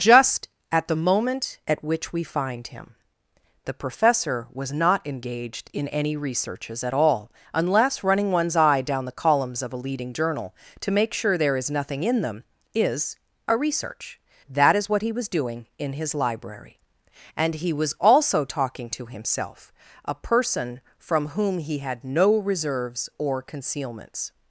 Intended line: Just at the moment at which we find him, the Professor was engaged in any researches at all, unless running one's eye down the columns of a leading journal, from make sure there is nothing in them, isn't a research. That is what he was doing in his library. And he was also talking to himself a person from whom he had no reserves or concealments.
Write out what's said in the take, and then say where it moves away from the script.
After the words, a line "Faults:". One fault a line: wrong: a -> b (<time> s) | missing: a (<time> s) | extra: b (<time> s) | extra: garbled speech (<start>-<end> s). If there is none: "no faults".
Just at the moment at which we find him, the Professor was not engaged in any researches at all, unless running one's eye down the columns of a leading journal, to make sure there is nothing in them, is a research. That is what he was doing in his library. And he was also talking to himself a person from whom he had no reserves or concealments.
Faults:
extra: not (4.7 s)
wrong: from -> to (10.8 s)
wrong: isn't -> is (12.7 s)